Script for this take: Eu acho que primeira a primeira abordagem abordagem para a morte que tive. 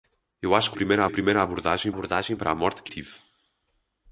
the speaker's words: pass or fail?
pass